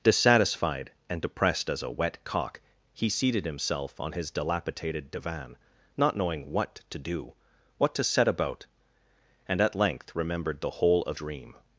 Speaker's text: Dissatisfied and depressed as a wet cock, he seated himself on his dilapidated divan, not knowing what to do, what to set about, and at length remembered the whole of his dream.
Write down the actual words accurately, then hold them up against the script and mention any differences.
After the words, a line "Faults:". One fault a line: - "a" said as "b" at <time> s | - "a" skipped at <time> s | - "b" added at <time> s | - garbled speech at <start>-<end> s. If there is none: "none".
Dissatisfied and depressed as a wet cock, he seated himself on his dilapidated divan, not knowing what to do, what to set about, and at length remembered the whole of dream.
Faults:
- "his" skipped at 11.2 s